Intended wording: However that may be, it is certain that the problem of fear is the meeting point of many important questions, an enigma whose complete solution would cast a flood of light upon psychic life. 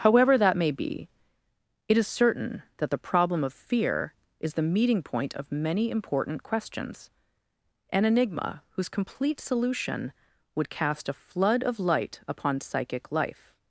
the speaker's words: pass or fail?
pass